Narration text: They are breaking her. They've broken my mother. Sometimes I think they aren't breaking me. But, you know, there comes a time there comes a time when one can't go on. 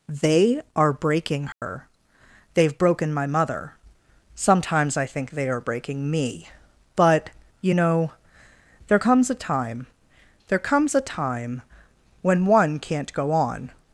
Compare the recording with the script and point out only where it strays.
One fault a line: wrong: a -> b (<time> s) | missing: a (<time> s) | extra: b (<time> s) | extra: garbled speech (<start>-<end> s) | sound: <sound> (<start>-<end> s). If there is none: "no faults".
sound: dropout (1.5-1.6 s)
wrong: aren't -> are (5.5 s)